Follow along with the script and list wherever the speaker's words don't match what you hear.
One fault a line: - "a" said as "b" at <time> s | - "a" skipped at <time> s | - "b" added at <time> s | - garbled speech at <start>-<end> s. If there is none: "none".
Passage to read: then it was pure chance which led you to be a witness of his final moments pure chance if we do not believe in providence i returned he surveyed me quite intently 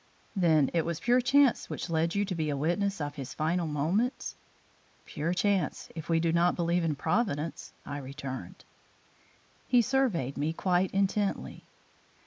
none